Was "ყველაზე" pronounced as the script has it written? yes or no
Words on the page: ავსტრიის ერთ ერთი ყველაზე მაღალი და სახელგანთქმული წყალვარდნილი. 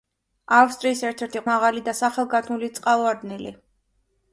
no